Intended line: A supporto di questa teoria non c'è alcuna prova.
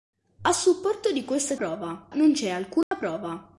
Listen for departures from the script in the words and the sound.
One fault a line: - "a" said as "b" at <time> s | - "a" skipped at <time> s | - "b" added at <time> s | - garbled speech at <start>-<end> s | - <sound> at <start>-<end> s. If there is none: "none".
- "teoria" said as "prova" at 1.5 s
- dropout at 2.8-2.9 s